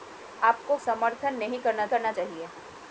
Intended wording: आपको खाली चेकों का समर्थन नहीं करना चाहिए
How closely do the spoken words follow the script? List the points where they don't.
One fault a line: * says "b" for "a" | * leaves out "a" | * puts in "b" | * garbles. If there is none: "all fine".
* leaves out "खाली चेकों का"
* puts in "करना"